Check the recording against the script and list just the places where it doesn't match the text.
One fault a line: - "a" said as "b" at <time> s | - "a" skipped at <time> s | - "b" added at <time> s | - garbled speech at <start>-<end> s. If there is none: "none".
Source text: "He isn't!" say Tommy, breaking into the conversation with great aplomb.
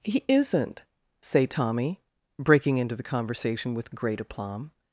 none